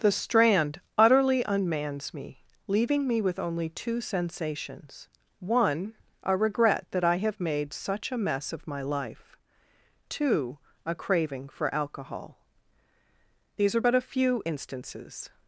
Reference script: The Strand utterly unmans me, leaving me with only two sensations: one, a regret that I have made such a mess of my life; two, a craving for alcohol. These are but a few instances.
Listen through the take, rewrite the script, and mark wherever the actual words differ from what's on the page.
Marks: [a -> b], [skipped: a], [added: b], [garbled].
The Strand utterly unmans me, leaving me with only two sensations: one, a regret that I have made such a mess of my life; two, a craving for alcohol. These are but a few instances.